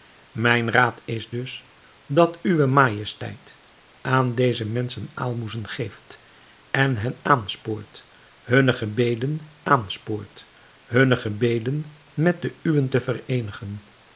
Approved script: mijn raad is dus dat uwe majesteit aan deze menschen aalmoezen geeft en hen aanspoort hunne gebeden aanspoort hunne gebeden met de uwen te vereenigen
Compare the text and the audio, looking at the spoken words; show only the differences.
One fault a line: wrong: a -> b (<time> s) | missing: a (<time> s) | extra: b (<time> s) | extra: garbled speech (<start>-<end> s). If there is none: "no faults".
no faults